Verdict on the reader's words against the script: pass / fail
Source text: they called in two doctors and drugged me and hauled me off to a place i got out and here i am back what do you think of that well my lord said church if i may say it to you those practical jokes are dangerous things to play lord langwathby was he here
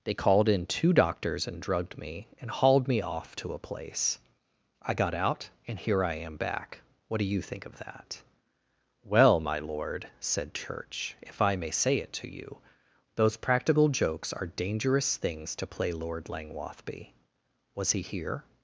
pass